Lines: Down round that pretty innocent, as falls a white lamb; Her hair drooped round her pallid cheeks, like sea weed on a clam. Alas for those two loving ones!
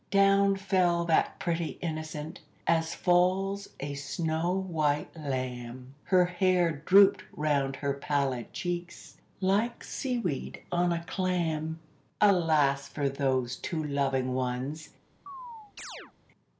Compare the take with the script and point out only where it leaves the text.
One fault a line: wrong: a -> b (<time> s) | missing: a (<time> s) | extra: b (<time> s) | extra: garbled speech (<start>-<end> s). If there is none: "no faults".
wrong: round -> fell (0.6 s)
extra: snow (3.9 s)